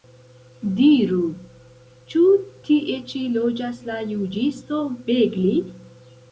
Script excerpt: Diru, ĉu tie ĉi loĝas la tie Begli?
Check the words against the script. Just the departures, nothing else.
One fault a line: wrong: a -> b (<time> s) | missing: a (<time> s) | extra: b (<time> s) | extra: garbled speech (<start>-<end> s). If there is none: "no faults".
wrong: tie -> juĝisto (4.1 s)